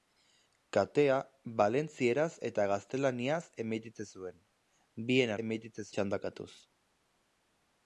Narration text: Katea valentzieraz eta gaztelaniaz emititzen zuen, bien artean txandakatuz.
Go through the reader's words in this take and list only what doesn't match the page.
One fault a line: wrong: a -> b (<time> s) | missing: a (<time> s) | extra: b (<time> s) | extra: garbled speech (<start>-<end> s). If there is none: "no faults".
wrong: artean -> emititzen (5.4 s)